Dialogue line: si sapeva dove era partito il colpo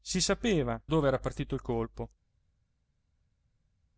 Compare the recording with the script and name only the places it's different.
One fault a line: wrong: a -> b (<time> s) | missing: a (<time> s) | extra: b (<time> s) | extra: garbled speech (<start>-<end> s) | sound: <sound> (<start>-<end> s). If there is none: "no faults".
no faults